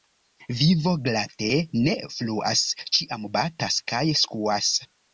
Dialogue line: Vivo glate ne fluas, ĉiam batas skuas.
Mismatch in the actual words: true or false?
true